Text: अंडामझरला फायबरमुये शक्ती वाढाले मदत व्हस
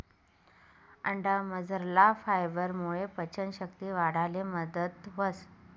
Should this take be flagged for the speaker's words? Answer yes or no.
yes